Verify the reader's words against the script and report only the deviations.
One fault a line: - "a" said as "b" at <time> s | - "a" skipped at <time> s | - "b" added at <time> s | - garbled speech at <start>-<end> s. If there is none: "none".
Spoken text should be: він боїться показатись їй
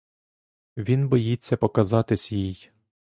none